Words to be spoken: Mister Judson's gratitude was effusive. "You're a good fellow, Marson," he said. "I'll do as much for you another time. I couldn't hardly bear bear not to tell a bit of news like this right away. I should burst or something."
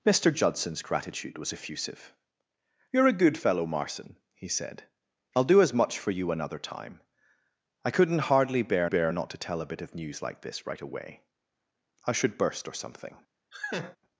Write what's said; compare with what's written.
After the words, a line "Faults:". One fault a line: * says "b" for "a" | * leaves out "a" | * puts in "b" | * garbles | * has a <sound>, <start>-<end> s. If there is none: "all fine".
Mister Judson's gratitude was effusive. "You're a good fellow, Marson," he said. "I'll do as much for you another time. I couldn't hardly bear bear not to tell a bit of news like this right away. I should burst or something."
Faults:
* has a laugh, 13.5-14.0 s